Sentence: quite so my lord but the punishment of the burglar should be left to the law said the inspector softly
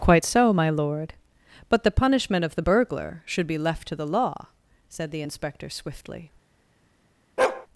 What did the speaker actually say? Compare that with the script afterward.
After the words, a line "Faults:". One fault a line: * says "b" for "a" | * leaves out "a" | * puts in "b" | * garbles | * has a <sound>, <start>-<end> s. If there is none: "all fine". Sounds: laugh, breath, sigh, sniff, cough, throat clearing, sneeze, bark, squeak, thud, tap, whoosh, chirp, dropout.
quite so my lord but the punishment of the burglar should be left to the law said the inspector swiftly
Faults:
* says "swiftly" for "softly"
* has a bark, 7.4-7.7 s